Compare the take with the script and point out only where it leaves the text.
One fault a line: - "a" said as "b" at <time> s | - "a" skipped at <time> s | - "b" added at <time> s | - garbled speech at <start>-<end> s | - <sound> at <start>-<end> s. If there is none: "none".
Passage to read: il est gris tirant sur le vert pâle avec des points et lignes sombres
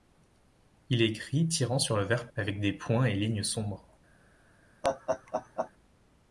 - "pâle" skipped at 2.3 s
- laugh at 4.8-5.7 s